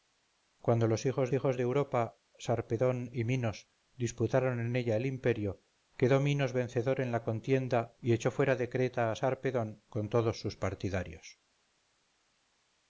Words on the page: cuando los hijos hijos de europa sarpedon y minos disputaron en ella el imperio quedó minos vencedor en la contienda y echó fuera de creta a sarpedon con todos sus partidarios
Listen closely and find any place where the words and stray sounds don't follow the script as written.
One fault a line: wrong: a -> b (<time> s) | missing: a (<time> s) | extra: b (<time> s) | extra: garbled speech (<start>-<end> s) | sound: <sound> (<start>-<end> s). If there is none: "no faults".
no faults